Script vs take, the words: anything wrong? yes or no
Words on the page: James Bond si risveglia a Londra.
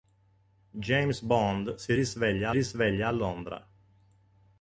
yes